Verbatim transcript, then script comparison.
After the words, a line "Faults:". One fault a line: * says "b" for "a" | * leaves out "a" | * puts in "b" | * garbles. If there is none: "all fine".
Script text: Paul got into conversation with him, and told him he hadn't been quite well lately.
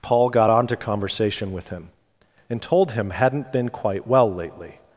Paul got onto conversation with him, and told him hadn't been quite well lately.
Faults:
* says "onto" for "into"
* leaves out "he"